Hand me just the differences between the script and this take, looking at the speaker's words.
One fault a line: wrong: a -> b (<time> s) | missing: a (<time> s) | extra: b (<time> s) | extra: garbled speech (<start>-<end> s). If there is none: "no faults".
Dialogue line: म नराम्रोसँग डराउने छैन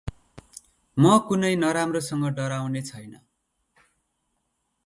extra: कुनै (1.3 s)